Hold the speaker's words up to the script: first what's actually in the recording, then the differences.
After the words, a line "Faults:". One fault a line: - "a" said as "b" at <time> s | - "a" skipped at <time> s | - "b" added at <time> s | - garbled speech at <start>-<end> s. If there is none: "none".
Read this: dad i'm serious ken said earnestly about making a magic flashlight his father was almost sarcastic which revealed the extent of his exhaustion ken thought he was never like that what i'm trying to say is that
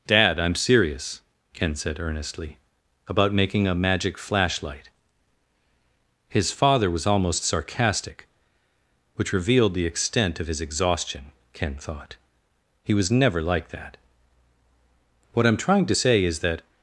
dad i'm serious ken said earnestly about making a magic flashlight his father was almost sarcastic which revealed the extent of his exhaustion ken thought he was never like that what i'm trying to say is that
Faults:
none